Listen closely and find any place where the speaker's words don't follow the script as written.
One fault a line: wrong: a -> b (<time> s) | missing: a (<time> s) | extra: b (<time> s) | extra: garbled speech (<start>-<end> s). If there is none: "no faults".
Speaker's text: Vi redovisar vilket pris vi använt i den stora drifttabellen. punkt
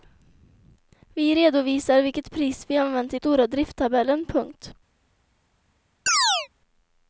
missing: den (3.2 s)